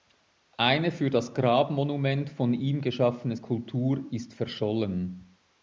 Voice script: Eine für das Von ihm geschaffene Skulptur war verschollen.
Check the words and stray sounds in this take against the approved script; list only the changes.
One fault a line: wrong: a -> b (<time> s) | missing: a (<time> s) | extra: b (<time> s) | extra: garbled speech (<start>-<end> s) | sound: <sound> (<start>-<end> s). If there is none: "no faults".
extra: Grabmonument (1.4 s)
wrong: war -> ist (4.1 s)